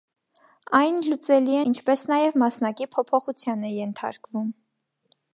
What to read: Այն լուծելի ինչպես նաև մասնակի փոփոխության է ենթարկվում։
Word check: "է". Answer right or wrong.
right